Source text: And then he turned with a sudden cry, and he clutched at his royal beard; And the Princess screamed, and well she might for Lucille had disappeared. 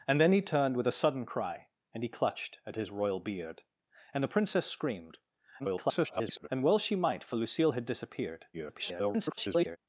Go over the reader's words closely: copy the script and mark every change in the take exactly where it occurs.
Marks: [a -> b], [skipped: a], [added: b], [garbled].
And then he turned with a sudden cry, and he clutched at his royal beard; And the Princess screamed, [garbled] and well she might for Lucille had disappeared. [garbled]